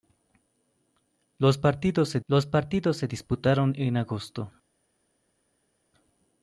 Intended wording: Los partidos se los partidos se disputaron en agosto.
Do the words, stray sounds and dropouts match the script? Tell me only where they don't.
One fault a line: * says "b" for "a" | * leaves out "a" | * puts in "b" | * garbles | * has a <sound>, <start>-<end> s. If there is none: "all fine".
all fine